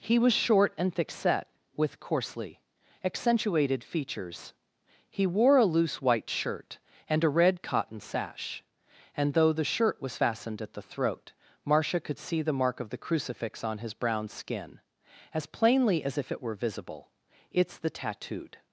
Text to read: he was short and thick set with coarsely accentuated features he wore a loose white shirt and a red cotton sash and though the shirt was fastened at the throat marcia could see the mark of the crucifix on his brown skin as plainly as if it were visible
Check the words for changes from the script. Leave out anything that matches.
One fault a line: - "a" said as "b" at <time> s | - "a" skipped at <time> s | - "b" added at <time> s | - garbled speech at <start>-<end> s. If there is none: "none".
- "it's the tattooed" added at 17.5 s